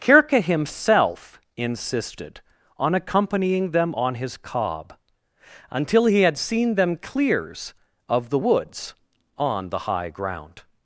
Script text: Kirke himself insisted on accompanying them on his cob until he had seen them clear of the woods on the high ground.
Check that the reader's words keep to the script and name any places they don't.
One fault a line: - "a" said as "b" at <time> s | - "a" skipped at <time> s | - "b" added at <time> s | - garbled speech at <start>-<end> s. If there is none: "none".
- "clear" said as "clears" at 6.9 s